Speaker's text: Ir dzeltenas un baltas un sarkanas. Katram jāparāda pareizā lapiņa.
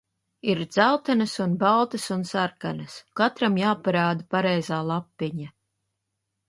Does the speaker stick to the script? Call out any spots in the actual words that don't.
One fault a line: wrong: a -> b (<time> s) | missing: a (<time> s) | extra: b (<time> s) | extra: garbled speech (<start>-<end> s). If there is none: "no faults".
no faults